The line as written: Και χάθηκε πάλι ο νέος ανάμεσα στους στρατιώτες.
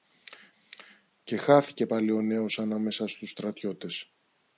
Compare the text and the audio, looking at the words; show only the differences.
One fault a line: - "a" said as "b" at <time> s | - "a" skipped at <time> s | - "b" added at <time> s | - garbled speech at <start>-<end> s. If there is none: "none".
none